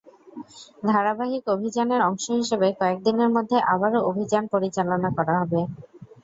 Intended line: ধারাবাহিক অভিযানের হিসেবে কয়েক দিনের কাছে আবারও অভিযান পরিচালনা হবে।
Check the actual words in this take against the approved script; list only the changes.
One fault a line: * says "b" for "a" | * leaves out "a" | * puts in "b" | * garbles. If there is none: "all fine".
* puts in "অংশ"
* says "মধ্যে" for "কাছে"
* puts in "করা"